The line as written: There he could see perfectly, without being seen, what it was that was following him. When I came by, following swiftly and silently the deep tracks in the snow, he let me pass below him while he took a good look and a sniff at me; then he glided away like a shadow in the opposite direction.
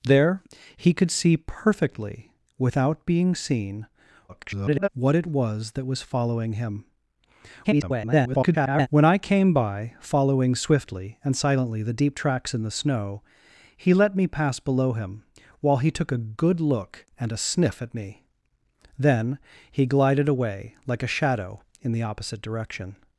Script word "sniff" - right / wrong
right